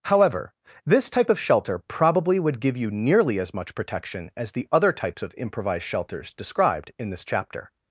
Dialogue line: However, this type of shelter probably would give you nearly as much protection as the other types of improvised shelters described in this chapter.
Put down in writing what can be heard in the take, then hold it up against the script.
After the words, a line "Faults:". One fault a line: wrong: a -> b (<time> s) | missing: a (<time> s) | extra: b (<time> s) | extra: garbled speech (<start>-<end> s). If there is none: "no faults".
However, this type of shelter probably would give you nearly as much protection as the other types of improvised shelters described in this chapter.
Faults:
no faults